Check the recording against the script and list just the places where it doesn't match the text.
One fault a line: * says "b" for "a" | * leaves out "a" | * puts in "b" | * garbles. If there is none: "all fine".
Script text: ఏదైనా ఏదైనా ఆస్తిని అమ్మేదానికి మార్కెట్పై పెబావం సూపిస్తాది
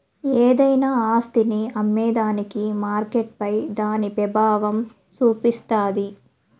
* leaves out "ఏదైనా"
* puts in "దాని"